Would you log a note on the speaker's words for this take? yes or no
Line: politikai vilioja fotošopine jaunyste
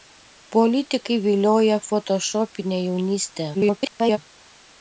yes